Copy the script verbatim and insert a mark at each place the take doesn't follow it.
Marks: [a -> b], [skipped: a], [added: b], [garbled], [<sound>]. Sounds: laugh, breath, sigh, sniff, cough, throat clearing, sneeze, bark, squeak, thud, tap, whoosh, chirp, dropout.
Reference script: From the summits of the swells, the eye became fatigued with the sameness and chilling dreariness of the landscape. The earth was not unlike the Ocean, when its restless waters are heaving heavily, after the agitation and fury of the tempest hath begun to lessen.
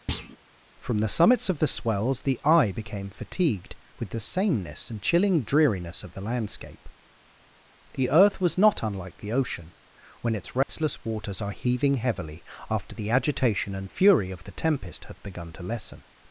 [thud] From the summits of the swells, the eye became fatigued with the sameness and chilling dreariness of the landscape. The earth was not unlike the Ocean, when its restless [dropout] waters are heaving heavily, after the agitation and fury of the tempest hath begun to lessen.